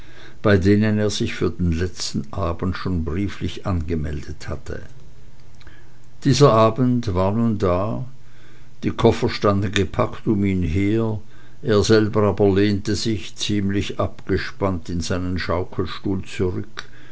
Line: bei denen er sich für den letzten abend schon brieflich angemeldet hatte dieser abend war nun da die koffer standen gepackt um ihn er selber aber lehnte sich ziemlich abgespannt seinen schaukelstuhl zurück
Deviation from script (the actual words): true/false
true